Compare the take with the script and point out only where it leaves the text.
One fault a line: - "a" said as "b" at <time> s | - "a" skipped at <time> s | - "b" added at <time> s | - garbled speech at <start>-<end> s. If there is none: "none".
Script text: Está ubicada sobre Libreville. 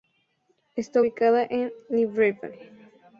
- "sobre" said as "en" at 1.5 s